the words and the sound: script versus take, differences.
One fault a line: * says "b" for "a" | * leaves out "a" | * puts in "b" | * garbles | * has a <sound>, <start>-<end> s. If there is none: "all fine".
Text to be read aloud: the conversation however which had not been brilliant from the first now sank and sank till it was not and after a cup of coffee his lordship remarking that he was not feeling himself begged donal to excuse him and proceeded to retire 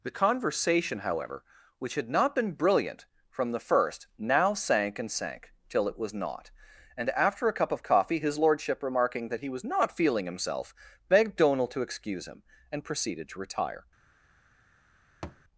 * has a thud, 15.2-15.4 s